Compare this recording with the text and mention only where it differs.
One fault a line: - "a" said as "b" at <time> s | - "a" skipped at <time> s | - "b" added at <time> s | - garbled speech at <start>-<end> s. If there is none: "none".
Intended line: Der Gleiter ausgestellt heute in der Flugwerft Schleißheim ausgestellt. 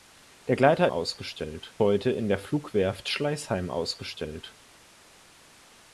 none